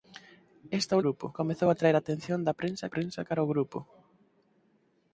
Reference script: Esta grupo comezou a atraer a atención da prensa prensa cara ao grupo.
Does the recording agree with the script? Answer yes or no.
yes